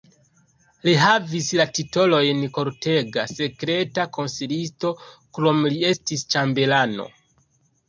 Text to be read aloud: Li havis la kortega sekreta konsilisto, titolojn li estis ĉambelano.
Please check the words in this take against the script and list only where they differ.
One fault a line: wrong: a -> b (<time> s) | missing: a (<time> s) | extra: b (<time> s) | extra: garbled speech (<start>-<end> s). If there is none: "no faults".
extra: titolojn (1.8 s)
wrong: titolojn -> krome (5.4 s)